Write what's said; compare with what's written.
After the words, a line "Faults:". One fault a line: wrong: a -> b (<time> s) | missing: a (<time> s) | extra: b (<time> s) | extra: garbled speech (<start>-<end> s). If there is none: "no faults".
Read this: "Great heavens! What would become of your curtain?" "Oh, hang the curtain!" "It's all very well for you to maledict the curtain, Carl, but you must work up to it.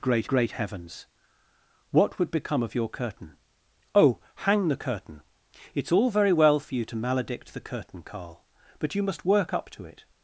"Great great heavens! What would become of your curtain?" "Oh, hang the curtain!" "It's all very well for you to maledict the curtain, Carl, but you must work up to it.
Faults:
extra: great (0.3 s)